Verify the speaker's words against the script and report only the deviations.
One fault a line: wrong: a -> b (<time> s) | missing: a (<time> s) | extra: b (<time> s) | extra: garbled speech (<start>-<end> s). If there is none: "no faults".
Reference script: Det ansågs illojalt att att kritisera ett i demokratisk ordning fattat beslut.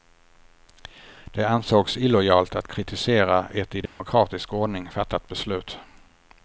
missing: att (2.7 s)